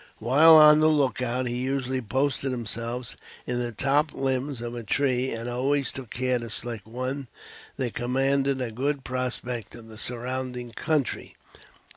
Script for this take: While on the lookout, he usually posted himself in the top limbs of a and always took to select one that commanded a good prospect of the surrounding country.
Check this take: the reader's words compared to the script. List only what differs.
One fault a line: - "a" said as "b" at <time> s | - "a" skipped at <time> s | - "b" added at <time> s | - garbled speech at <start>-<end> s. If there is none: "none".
- "tree" added at 4.8 s
- "care" added at 6.1 s